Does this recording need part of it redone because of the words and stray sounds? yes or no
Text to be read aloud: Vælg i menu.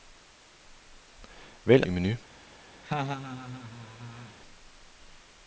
yes